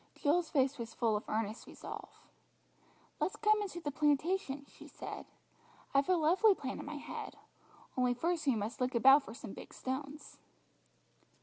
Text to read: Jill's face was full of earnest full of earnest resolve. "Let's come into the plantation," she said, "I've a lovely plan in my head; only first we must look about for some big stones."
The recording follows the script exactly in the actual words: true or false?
false